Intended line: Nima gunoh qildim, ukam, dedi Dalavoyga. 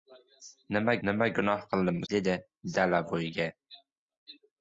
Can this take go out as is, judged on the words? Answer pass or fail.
fail